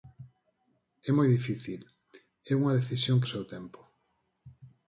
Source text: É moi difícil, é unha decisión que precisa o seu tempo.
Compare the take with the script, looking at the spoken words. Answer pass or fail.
fail